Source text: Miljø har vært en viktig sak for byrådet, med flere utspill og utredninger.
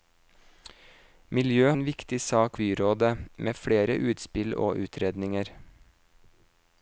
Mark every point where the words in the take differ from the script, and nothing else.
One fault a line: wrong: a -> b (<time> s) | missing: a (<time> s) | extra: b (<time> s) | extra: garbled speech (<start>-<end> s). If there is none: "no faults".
missing: har vært (1.7 s)
missing: for (2.6 s)